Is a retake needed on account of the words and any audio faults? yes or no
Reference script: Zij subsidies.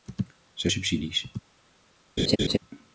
yes